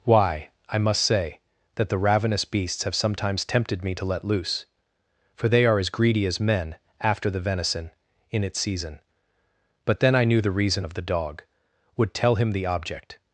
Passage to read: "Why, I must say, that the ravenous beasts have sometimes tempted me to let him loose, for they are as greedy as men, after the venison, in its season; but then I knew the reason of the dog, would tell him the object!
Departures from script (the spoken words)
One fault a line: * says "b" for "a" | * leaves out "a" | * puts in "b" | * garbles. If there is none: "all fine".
* leaves out "him"